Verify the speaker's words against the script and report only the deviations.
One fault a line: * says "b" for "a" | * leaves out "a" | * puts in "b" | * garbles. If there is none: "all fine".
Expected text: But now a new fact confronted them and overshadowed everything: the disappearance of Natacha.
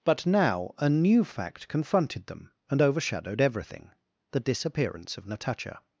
all fine